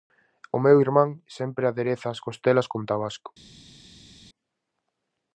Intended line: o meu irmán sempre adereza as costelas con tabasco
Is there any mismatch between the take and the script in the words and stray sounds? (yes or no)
no